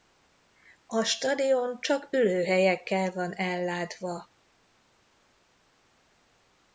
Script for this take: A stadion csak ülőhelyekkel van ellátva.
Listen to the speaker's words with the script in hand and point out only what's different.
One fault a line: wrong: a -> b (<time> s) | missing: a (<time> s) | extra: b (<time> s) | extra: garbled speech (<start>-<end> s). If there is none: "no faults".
no faults